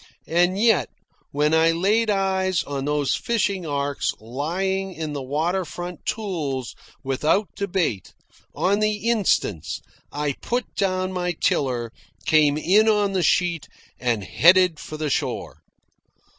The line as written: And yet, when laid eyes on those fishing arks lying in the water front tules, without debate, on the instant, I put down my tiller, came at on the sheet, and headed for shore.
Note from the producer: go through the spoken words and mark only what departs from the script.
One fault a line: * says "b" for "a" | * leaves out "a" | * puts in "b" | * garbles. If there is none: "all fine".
* puts in "I"
* says "in" for "at"
* puts in "the"